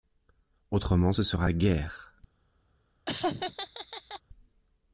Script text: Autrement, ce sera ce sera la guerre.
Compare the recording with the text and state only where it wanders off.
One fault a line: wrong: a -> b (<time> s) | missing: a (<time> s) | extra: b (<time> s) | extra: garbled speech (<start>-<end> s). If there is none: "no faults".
missing: ce sera (1.5 s)